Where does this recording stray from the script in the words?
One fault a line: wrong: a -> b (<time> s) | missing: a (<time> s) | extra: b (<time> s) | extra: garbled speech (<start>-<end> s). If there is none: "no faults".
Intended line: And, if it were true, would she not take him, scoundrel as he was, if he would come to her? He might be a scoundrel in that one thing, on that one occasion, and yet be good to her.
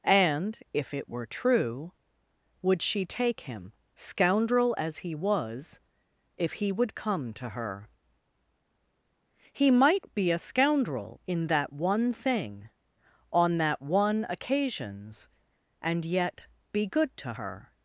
missing: not (3.0 s)
wrong: occasion -> occasions (14.3 s)